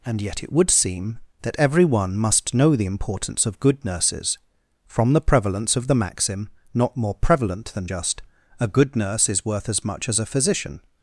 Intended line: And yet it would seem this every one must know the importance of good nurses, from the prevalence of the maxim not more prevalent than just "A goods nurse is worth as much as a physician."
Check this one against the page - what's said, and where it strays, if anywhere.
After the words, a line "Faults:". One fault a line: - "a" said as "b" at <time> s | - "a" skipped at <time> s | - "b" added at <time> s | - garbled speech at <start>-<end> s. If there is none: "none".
And yet it would seem that every one must know the importance of good nurses, from the prevalence of the maxim not more prevalent than just "A good nurse is worth as much as a physician."
Faults:
- "this" said as "that" at 1.4 s
- "goods" said as "good" at 8.7 s